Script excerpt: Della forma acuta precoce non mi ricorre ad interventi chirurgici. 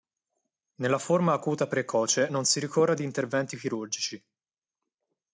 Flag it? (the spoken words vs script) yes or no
yes